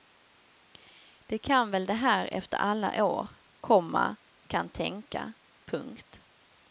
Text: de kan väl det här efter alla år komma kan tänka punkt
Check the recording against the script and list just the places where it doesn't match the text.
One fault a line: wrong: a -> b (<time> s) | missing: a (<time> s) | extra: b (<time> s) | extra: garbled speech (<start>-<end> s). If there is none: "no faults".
no faults